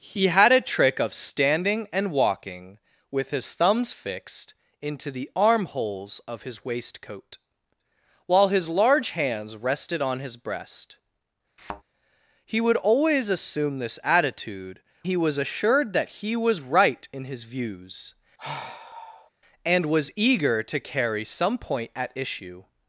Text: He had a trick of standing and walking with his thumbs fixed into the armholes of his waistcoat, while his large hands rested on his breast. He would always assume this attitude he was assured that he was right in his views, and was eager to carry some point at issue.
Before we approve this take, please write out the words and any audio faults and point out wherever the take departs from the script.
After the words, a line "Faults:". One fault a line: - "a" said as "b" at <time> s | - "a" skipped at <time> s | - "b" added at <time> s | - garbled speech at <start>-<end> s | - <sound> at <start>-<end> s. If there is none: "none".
He had a trick of standing and walking with his thumbs fixed into the armholes of his waistcoat, while his large hands rested on his breast. He would always assume this attitude he was assured that he was right in his views, and was eager to carry some point at issue.
Faults:
- thud at 11.6-11.8 s
- sigh at 18.4-19.3 s